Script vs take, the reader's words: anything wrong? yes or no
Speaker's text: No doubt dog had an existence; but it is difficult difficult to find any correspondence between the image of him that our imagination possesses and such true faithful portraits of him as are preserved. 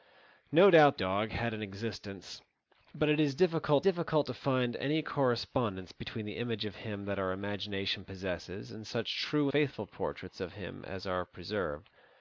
no